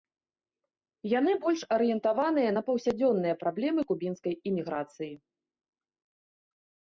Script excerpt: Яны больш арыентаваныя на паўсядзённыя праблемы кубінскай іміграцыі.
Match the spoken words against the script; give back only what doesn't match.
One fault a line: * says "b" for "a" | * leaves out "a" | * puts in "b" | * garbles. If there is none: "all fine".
all fine